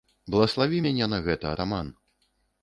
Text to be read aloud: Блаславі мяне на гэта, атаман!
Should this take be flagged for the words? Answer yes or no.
no